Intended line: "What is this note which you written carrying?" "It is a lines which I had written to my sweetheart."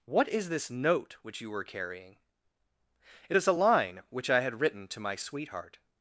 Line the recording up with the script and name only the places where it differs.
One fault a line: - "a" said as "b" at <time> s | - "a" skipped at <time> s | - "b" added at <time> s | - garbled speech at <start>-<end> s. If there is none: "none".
- "written" said as "were" at 1.5 s
- "lines" said as "line" at 3.6 s